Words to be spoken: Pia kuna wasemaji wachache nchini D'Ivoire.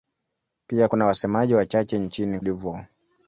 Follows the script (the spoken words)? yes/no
yes